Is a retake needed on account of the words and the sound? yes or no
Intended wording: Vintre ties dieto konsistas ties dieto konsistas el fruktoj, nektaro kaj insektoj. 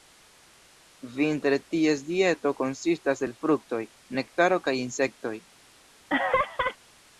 yes